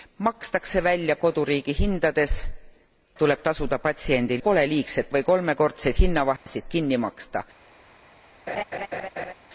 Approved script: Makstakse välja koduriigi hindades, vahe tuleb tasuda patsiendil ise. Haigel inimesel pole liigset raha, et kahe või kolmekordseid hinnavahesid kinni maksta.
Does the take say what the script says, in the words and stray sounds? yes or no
no